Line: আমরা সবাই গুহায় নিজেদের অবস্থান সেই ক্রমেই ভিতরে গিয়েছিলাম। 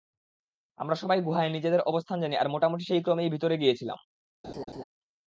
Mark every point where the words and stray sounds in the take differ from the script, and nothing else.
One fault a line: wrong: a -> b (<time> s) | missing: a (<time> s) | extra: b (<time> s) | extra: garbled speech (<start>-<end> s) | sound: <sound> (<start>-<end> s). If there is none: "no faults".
extra: জানি আর মোটামুটি (2.2 s)
sound: laugh (4.4-4.8 s)